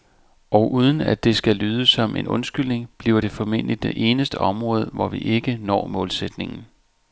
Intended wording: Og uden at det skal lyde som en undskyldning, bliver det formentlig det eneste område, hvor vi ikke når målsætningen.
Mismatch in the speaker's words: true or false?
false